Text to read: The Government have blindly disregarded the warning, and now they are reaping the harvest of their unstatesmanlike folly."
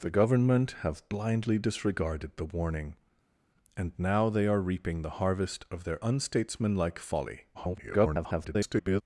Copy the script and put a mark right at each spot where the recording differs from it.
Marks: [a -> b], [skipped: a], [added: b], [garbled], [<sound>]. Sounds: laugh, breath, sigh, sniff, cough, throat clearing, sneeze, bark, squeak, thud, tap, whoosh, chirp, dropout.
The Government have blindly disregarded the warning, and now they are reaping the harvest of their unstatesmanlike folly." [garbled]